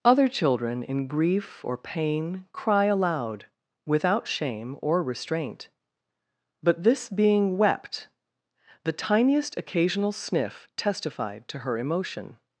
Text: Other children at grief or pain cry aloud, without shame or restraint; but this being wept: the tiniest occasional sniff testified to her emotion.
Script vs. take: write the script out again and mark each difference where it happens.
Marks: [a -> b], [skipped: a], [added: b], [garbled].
Other children [at -> in] grief or pain cry aloud, without shame or restraint; but this being wept: the tiniest occasional sniff testified to her emotion.